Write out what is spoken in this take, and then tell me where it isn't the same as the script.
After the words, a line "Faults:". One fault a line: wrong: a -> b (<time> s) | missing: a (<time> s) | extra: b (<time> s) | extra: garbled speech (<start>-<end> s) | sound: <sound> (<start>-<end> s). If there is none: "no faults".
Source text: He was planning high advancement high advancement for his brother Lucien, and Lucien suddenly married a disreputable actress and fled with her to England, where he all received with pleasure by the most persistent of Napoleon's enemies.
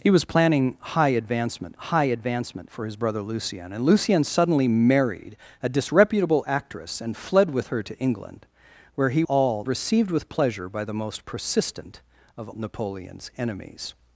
He was planning high advancement high advancement for his brother Lucien, and Lucien suddenly married a disreputable actress and fled with her to England, where he all received with pleasure by the most persistent of Napoleon's enemies.
Faults:
no faults